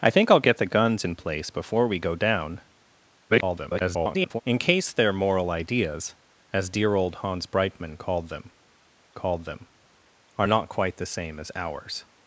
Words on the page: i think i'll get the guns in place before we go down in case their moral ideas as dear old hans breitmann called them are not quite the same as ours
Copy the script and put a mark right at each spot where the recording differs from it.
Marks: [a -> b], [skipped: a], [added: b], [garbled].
i think i'll get the guns in place before we go down [garbled] in case their moral ideas as dear old hans breitmann called them [added: called them] are not quite the same as ours